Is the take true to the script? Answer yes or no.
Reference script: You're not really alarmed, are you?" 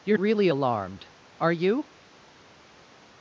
no